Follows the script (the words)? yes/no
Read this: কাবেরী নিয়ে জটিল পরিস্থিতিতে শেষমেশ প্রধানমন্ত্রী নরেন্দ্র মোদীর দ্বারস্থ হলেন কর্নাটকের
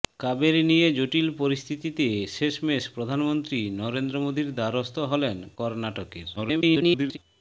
no